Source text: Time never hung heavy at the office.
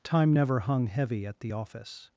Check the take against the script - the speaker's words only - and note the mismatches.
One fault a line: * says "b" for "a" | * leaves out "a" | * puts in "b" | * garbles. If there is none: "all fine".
all fine